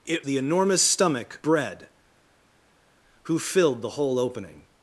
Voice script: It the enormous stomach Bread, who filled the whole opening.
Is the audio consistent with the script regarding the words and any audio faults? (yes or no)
yes